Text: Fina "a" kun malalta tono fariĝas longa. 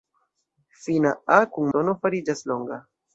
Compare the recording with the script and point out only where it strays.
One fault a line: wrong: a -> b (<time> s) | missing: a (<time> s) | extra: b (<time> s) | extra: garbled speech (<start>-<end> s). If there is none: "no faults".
missing: malalta (1.7 s)